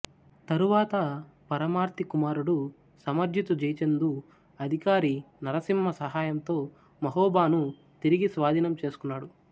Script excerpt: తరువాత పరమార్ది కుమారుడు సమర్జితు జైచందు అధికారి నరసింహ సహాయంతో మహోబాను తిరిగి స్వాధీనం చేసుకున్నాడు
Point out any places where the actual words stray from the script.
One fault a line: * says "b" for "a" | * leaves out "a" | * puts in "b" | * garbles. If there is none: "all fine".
all fine